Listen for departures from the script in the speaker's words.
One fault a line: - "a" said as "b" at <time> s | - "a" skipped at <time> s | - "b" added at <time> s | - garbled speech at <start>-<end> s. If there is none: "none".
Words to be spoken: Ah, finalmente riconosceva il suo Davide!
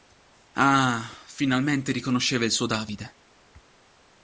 none